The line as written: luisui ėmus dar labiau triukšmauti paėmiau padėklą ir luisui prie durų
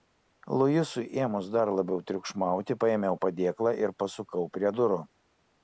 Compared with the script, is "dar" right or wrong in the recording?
right